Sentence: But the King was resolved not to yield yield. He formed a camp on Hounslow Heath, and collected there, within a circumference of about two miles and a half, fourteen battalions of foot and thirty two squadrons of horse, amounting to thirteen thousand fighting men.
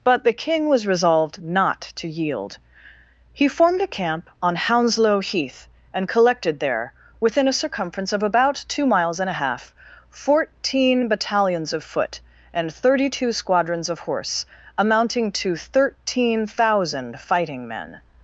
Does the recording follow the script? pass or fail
fail